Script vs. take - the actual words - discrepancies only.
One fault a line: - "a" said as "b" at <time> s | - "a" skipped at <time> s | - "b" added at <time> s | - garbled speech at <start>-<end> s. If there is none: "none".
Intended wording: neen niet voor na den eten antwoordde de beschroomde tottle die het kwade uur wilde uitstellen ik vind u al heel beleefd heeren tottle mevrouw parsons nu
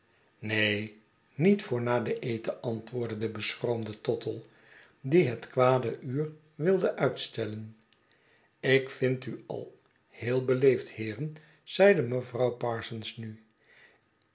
- "tottle" said as "zeide" at 11.6 s